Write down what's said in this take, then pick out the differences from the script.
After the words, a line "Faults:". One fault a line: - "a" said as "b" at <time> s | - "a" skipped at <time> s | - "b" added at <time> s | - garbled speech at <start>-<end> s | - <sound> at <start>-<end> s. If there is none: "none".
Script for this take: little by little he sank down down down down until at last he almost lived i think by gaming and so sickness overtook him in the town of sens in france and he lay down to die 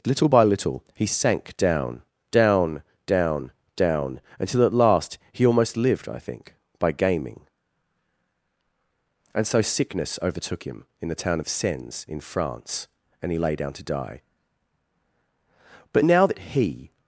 little by little he sank down down down down until at last he almost lived i think by gaming and so sickness overtook him in the town of sens in france and he lay down to die but now that he
Faults:
- "but now that he" added at 15.9 s